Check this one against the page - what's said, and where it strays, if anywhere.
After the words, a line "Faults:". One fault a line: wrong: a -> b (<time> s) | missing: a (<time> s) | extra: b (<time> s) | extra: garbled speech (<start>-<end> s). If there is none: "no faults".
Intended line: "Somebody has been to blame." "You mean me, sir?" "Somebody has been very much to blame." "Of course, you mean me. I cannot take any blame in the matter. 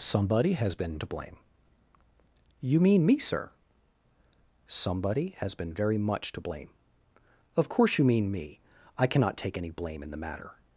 "Somebody has been to blame." "You mean me, sir?" "Somebody has been very much to blame." "Of course, you mean me. I cannot take any blame in the matter.
Faults:
no faults